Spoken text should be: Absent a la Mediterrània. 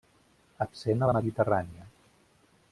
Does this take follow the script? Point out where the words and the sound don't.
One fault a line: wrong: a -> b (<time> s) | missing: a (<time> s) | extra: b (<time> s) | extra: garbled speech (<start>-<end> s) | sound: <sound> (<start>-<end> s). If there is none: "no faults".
no faults